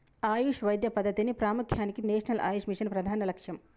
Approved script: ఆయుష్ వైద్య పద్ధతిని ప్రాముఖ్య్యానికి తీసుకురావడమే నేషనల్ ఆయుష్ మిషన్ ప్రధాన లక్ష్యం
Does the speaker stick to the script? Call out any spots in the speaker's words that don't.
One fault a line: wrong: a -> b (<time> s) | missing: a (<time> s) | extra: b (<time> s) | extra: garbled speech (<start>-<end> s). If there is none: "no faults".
missing: తీసుకురావడమే (2.0 s)